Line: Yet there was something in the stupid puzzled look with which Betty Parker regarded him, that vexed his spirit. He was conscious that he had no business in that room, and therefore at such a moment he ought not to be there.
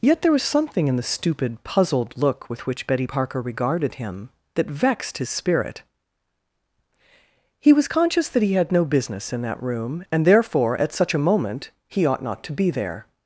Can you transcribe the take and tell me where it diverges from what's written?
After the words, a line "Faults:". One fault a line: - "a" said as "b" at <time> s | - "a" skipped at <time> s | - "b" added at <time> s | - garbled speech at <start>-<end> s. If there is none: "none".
Yet there was something in the stupid puzzled look with which Betty Parker regarded him, that vexed his spirit. He was conscious that he had no business in that room, and therefore at such a moment he ought not to be there.
Faults:
none